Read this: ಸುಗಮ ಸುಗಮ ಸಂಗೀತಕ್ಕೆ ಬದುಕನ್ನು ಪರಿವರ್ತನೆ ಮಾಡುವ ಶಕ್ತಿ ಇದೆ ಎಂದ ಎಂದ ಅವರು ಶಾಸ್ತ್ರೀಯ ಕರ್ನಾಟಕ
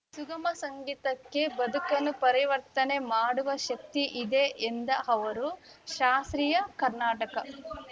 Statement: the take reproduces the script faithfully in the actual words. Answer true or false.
false